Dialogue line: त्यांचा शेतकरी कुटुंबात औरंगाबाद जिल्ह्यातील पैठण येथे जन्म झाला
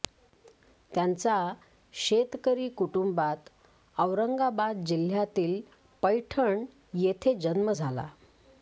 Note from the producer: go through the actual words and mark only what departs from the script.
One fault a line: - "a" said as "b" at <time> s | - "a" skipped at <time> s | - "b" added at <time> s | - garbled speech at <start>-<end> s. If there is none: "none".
none